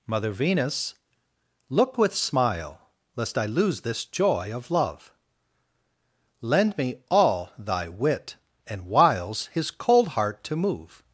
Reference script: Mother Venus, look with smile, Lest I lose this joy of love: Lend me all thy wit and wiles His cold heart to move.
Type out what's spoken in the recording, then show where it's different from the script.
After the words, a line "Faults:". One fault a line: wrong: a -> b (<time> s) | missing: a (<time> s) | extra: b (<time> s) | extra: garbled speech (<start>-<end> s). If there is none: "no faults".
Mother Venus, look with smile, Lest I lose this joy of love: Lend me all thy wit and wiles His cold heart to move.
Faults:
no faults